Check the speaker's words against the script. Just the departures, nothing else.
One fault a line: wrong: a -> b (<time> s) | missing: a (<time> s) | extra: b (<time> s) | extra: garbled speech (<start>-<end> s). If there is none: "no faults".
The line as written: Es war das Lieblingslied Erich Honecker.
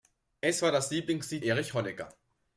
no faults